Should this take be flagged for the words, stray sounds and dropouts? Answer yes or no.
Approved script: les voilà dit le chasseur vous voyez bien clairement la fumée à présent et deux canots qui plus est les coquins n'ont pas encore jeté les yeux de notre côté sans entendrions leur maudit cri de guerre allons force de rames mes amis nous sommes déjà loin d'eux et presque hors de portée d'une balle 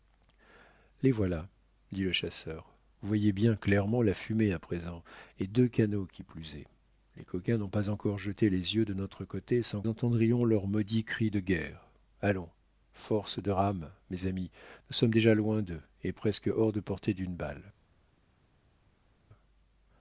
no